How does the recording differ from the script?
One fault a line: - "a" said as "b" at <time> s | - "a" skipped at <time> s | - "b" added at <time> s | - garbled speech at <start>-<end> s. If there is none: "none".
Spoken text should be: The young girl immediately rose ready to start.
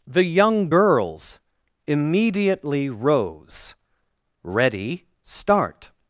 - "girl" said as "girls" at 0.7 s
- "to" skipped at 5.1 s